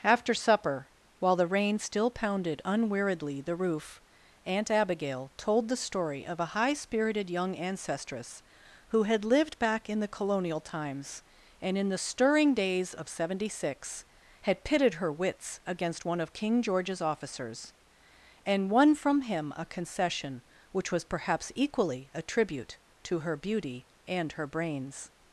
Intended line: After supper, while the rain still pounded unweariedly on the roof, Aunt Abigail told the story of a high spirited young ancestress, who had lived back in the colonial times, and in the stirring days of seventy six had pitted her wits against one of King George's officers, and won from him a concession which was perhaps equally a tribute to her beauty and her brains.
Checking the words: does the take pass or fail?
fail